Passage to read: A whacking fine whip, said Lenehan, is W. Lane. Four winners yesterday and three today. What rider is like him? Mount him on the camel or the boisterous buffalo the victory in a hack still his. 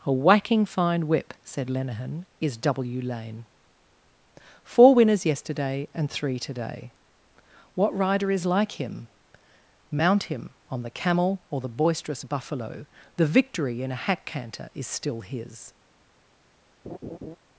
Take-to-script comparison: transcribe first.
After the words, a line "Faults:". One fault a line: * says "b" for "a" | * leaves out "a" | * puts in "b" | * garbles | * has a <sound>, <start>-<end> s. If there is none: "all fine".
A whacking fine whip, said Lenehan, is W. Lane. Four winners yesterday and three today. What rider is like him? Mount him on the camel or the boisterous buffalo the victory in a hack canter is still his.
Faults:
* puts in "canter is"
* has a laugh, 16.8-17.4 s